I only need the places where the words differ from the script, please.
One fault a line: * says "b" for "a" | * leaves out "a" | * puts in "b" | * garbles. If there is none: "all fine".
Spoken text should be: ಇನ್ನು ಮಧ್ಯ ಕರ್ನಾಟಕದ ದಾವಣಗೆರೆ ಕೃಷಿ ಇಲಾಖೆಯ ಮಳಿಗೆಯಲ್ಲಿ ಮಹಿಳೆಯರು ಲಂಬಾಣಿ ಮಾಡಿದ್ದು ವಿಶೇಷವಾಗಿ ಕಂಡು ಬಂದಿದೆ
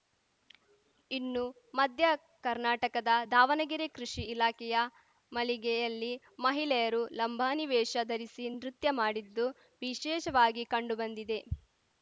* puts in "ವೇಷ ಧರಿಸಿ ನೃತ್ಯ"